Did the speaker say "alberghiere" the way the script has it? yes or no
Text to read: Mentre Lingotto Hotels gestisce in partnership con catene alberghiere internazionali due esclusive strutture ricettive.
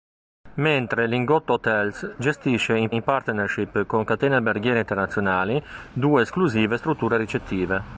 yes